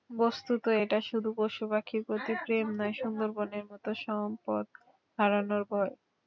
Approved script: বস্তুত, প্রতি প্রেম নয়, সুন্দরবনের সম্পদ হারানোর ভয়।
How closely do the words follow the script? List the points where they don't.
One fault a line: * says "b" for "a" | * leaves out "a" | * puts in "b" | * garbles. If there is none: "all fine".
* puts in "এটা শুধু পশুপাখির"
* puts in "মতো"